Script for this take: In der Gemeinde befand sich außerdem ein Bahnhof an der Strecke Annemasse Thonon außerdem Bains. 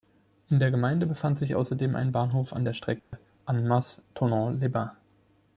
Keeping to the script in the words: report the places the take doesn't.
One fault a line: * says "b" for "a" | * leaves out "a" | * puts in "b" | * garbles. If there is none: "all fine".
* says "les" for "außerdem"